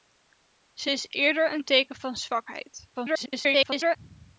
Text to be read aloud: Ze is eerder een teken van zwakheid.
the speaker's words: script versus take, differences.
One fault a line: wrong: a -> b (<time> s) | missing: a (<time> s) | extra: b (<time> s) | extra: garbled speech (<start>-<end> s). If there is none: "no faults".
extra: garbled speech (2.9-4.0 s)